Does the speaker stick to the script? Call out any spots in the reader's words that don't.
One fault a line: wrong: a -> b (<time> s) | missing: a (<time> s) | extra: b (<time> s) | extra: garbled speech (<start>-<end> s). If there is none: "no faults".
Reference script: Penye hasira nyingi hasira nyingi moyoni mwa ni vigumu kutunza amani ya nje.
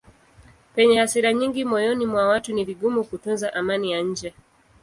missing: hasira nyingi (1.6 s)
extra: watu (2.3 s)